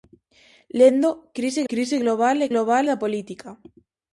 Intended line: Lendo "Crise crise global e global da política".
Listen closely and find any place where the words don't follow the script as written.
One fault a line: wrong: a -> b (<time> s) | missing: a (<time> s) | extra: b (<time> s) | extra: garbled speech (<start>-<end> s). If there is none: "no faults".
no faults